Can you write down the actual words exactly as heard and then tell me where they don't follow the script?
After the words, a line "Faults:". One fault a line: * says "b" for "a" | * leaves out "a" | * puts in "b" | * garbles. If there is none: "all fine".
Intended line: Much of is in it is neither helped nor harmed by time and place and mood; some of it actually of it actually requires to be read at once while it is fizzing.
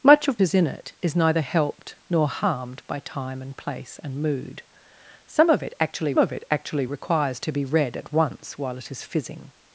Much of is in it is neither helped nor harmed by time and place and mood; some of it actually of it actually requires to be read at once while it is fizzing.
Faults:
all fine